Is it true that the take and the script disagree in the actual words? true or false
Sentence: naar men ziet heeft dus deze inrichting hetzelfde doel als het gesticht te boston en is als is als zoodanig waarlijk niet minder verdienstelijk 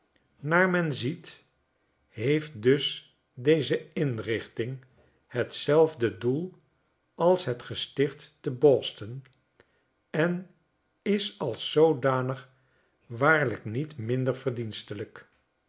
true